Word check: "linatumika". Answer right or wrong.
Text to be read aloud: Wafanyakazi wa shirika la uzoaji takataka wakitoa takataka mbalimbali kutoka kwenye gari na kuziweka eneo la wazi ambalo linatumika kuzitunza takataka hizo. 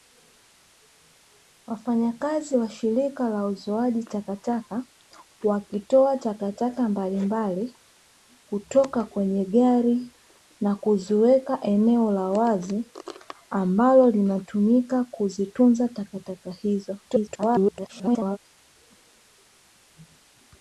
right